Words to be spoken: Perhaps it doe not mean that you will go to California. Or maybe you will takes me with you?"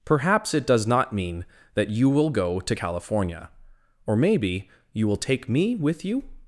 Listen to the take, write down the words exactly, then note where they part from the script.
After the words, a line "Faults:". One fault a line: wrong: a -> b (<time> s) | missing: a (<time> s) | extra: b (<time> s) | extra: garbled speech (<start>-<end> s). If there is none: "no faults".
Perhaps it does not mean that you will go to California. Or maybe you will take me with you?"
Faults:
wrong: doe -> does (0.7 s)
wrong: takes -> take (5.2 s)